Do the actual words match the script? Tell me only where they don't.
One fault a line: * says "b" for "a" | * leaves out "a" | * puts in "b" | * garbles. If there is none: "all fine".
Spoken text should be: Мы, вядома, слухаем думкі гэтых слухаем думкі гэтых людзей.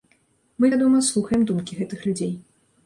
* leaves out "слухаем думкі гэтых"